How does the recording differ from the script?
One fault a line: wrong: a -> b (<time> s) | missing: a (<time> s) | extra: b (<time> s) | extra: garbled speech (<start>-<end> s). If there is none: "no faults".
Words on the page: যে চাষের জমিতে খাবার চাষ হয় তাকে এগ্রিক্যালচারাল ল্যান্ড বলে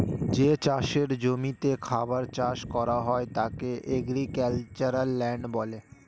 extra: করা (2.7 s)